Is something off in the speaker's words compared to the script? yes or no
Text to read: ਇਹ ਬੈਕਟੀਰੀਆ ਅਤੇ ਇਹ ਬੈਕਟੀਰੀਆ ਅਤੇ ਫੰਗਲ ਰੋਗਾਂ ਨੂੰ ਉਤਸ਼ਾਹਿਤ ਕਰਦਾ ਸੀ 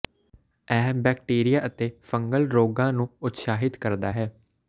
yes